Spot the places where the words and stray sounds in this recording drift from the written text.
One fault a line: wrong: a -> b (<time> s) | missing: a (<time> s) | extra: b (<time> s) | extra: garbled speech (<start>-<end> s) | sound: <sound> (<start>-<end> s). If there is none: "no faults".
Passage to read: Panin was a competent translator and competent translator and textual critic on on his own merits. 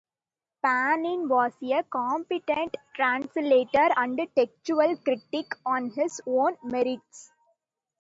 missing: competent translator and (4.2 s)
missing: on (5.9 s)